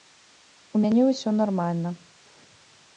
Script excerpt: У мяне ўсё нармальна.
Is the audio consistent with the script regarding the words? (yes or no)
yes